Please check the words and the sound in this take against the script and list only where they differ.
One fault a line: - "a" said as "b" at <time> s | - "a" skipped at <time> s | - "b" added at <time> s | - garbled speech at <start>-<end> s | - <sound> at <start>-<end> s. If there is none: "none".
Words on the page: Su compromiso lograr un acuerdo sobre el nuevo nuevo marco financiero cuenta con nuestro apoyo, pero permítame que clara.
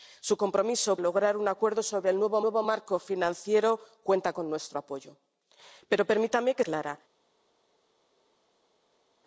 none